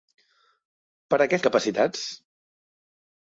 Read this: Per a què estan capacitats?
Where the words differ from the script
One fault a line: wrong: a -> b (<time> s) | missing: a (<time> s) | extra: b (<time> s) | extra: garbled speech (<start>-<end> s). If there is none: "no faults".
missing: estan (1.4 s)